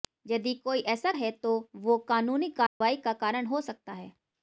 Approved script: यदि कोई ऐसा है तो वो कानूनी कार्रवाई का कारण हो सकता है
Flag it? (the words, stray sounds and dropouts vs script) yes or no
yes